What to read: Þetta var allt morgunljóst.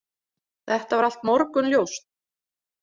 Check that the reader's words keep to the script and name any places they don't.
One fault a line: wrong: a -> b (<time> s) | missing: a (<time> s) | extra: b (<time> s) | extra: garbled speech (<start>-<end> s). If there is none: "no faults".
no faults